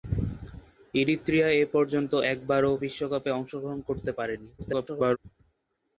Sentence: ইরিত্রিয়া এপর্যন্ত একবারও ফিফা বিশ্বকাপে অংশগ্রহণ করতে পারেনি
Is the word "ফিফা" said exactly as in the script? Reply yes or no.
no